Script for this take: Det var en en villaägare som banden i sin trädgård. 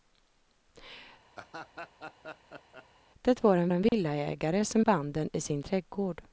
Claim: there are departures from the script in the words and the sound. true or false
true